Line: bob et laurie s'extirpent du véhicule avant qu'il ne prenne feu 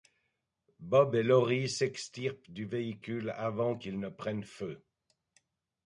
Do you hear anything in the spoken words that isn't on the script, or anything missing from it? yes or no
no